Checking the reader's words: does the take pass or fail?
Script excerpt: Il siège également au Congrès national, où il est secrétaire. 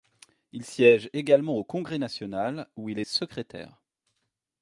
pass